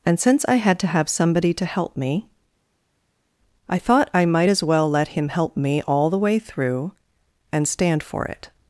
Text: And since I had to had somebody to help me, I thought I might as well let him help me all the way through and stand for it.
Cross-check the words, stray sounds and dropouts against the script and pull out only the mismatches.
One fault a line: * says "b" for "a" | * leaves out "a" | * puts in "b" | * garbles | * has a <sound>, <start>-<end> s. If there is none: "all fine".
* says "have" for "had"